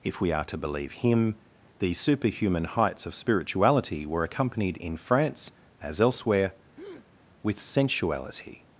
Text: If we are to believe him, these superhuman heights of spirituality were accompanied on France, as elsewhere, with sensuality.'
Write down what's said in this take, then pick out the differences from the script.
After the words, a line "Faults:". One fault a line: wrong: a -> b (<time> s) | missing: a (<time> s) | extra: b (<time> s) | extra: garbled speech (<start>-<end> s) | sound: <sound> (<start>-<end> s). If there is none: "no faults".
If we are to believe him, these superhuman heights of spirituality were accompanied in France, as elsewhere, with sensuality.'
Faults:
wrong: on -> in (4.8 s)
sound: breath (6.7-7.1 s)